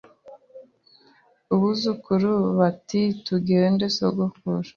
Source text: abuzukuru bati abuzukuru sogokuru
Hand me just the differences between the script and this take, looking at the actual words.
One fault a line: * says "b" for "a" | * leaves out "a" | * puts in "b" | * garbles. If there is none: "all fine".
* says "tugende" for "abuzukuru"